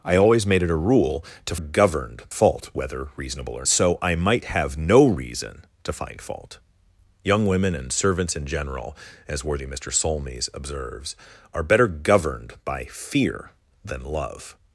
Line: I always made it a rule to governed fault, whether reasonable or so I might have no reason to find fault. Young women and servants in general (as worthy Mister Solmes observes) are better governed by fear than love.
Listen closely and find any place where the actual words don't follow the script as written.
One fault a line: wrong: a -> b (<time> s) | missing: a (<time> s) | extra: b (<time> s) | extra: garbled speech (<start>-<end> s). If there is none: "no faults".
no faults